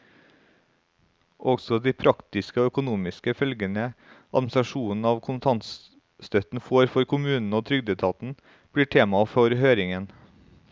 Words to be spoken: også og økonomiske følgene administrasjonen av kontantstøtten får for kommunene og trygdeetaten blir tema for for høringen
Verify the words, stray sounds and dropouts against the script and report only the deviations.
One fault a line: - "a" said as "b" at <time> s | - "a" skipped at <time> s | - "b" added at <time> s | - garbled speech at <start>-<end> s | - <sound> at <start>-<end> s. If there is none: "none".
- "de praktiske" added at 1.8 s
- "for" skipped at 9.5 s